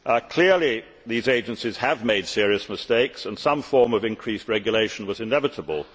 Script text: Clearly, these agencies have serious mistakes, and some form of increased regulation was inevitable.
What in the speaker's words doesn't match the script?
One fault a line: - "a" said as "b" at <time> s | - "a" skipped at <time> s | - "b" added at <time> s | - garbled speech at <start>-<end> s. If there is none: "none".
- "made" added at 2.0 s